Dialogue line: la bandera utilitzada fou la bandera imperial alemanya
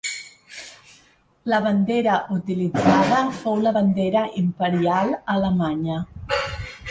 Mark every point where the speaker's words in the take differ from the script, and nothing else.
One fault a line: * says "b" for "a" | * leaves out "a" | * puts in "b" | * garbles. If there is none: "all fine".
all fine